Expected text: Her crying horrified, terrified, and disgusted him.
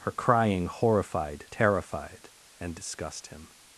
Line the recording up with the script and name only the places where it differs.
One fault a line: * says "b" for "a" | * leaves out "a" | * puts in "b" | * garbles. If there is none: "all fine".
* says "disgust" for "disgusted"